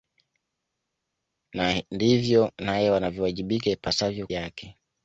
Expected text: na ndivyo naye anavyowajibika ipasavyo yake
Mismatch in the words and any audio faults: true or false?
false